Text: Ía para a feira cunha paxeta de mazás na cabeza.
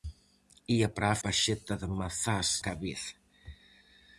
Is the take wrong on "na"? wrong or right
wrong